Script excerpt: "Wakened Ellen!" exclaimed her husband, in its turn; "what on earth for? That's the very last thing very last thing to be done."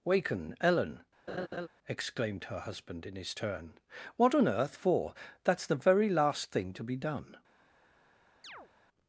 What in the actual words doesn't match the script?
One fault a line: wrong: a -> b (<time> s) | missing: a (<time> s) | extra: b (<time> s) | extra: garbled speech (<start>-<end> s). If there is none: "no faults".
wrong: Wakened -> Waken (0.0 s)
wrong: its -> his (3.2 s)
missing: very last thing (6.7 s)